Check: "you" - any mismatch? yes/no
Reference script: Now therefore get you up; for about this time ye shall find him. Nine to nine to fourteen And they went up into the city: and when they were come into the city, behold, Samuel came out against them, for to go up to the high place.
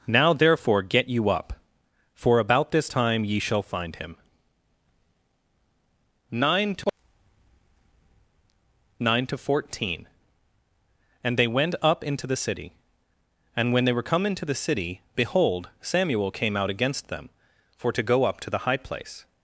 no